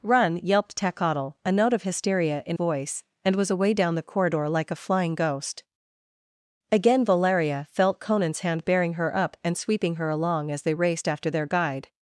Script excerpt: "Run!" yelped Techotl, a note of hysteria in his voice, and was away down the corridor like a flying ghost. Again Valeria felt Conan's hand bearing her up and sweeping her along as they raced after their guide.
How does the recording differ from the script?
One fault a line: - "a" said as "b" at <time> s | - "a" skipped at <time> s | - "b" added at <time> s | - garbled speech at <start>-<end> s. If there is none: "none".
- "his" skipped at 2.6 s